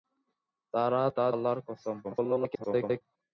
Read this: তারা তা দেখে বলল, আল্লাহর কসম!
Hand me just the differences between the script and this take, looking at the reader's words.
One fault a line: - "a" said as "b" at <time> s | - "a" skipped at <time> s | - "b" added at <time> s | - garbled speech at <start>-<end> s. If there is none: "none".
- "দেখে বলল" skipped at 1.2 s
- garbled speech at 2.0-3.0 s